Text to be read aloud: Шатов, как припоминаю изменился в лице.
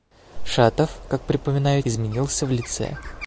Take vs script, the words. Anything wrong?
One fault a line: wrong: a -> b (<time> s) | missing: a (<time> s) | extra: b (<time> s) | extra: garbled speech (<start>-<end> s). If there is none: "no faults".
no faults